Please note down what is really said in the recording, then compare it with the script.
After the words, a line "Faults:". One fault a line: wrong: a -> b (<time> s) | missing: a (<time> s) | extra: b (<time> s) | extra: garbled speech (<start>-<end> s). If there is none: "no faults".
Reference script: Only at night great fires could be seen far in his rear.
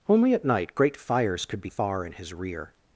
Only at night great fires could be far in his rear.
Faults:
missing: seen (1.7 s)